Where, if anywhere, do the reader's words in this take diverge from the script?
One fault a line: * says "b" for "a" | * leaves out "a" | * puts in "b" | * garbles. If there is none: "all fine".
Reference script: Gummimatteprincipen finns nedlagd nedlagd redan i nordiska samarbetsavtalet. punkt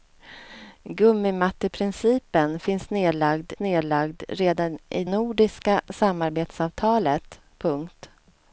all fine